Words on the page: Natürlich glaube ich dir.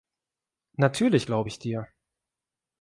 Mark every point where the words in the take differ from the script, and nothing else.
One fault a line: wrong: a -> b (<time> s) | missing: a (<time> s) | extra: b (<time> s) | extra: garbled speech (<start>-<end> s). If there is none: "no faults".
no faults